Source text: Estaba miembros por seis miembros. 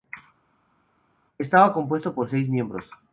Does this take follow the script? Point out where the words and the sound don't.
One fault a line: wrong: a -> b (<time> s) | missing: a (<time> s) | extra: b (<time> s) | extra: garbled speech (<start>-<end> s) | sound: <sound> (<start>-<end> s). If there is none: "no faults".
wrong: miembros -> compuesto (1.7 s)